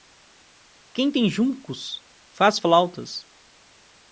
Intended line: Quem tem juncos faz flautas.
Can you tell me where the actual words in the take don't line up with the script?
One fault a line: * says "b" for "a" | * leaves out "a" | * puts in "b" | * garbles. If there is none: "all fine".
all fine